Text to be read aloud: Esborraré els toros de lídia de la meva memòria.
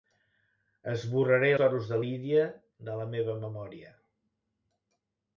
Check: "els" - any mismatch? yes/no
yes